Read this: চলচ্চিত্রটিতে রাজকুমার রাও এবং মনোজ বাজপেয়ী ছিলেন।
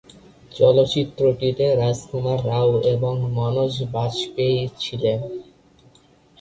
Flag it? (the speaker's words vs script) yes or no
no